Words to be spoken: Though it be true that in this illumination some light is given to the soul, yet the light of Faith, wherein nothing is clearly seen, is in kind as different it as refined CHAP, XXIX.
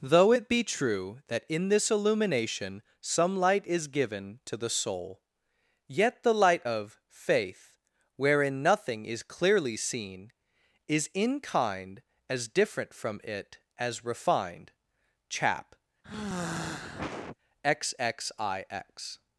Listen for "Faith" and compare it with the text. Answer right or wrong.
right